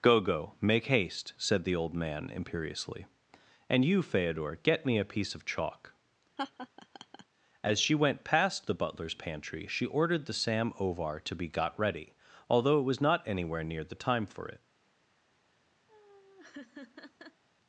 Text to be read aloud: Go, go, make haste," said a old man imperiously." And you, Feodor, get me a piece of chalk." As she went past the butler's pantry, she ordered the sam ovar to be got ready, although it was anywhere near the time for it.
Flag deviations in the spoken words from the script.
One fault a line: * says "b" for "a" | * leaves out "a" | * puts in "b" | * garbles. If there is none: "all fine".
* says "the" for "a"
* puts in "not"